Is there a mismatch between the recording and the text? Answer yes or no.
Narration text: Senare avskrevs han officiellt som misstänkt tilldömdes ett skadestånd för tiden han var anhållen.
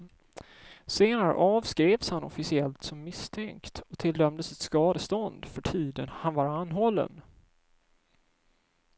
yes